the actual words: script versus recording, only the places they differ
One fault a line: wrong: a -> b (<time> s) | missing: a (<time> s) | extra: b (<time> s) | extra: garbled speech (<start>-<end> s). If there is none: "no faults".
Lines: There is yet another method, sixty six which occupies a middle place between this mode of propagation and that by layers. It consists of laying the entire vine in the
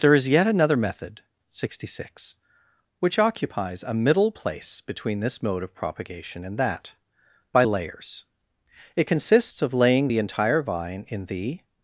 no faults